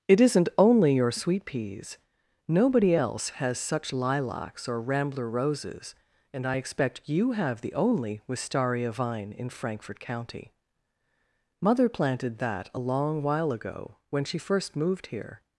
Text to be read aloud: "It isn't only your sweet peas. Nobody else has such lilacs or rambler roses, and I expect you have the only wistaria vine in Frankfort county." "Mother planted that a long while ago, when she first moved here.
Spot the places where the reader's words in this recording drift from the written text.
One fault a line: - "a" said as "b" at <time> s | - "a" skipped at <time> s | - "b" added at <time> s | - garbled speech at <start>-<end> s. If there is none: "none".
none